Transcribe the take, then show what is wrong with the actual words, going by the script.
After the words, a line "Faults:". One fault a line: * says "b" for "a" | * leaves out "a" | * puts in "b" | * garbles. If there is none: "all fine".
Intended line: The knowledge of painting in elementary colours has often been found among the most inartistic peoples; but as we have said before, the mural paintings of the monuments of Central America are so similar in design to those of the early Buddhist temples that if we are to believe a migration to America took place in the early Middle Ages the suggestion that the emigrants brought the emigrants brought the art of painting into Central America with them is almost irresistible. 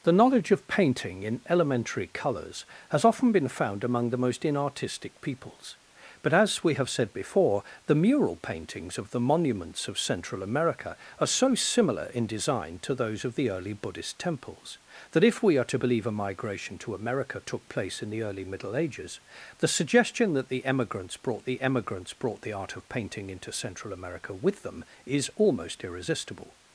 The knowledge of painting in elementary colours has often been found among the most inartistic peoples; but as we have said before, the mural paintings of the monuments of Central America are so similar in design to those of the early Buddhist temples that if we are to believe a migration to America took place in the early Middle Ages the suggestion that the emigrants brought the emigrants brought the art of painting into Central America with them is almost irresistible.
Faults:
all fine